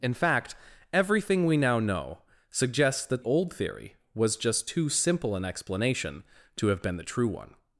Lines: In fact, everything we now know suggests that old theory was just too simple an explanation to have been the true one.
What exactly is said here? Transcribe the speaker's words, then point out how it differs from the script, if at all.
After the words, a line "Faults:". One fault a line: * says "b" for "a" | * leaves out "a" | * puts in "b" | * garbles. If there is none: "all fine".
In fact, everything we now know suggests that old theory was just too simple an explanation to have been the true one.
Faults:
all fine